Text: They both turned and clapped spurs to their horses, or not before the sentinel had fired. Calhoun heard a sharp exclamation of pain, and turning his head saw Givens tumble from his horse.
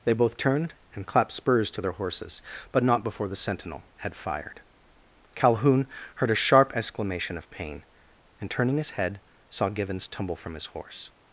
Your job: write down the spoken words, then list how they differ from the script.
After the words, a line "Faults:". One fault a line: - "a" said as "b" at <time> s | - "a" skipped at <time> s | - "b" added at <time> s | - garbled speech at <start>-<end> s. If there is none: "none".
They both turned and clapped spurs to their horses, but not before the sentinel had fired. Calhoun heard a sharp exclamation of pain, and turning his head saw Givens tumble from his horse.
Faults:
- "or" said as "but" at 2.7 s